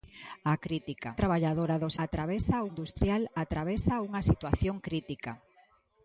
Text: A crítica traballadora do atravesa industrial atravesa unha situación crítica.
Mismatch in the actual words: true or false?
false